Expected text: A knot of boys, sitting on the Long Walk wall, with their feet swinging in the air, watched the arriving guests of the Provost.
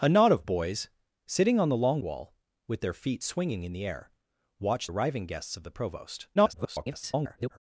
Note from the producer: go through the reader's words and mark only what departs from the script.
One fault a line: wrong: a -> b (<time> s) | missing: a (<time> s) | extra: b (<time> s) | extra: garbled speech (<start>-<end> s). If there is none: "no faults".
missing: Walk (2.0 s)
missing: the (4.9 s)
extra: garbled speech (6.4-7.6 s)